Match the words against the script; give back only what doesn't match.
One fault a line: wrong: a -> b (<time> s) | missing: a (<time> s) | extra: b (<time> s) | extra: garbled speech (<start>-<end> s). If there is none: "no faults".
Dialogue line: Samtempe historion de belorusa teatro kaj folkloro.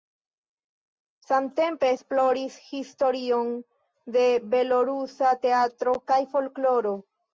extra: esploris (1.9 s)